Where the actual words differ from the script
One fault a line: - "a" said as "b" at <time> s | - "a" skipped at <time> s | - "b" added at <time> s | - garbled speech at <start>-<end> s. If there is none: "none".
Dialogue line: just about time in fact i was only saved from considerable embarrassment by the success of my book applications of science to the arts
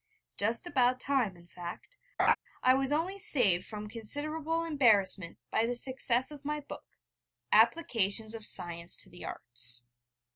none